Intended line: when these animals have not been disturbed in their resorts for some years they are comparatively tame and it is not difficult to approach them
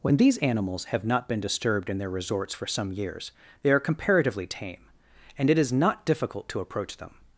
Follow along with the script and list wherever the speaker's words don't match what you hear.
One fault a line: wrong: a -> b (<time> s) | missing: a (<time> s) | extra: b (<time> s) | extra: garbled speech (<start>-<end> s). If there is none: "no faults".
no faults